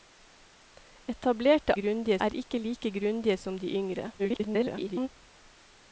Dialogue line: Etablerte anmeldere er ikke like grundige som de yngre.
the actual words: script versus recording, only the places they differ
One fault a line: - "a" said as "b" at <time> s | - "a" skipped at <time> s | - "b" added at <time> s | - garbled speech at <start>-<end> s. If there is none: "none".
- "anmeldere" said as "grundige" at 1.8 s
- garbled speech at 4.2-5.1 s